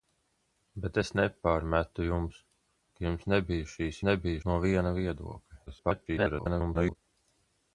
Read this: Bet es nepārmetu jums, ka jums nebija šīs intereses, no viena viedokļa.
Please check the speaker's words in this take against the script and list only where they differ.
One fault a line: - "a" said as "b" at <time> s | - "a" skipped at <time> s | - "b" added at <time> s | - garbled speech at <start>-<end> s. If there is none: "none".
- "intereses" said as "nebija" at 4.1 s
- garbled speech at 5.7-7.0 s